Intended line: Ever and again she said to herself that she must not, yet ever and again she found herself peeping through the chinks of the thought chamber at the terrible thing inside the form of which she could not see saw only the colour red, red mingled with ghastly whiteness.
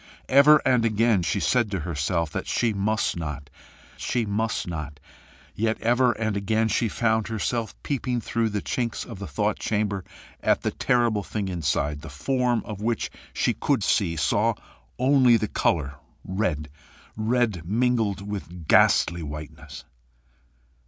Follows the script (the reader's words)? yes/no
no